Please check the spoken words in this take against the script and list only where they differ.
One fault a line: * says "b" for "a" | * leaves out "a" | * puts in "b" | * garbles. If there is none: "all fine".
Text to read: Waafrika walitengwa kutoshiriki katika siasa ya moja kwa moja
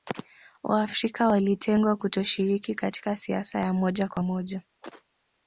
all fine